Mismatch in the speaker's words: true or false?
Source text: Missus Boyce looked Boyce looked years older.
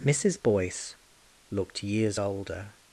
true